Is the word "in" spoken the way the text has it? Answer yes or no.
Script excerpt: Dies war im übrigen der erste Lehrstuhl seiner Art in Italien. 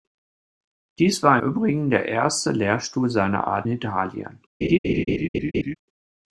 no